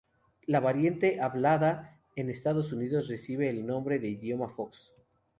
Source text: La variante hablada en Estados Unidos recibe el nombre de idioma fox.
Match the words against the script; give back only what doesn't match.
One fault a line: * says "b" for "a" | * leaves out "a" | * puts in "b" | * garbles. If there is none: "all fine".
all fine